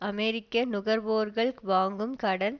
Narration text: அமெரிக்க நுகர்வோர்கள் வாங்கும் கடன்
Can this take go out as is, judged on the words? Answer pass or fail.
pass